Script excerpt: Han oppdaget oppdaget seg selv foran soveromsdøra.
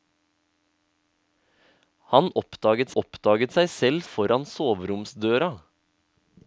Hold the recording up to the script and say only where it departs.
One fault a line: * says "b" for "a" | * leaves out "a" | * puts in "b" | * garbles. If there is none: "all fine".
all fine